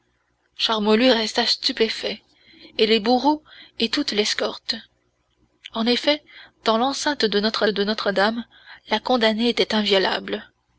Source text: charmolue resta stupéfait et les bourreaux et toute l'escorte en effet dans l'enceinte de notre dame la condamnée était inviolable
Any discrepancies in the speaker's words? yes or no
yes